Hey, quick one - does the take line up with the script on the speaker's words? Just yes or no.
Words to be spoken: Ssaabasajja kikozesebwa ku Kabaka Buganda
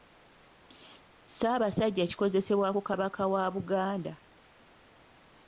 no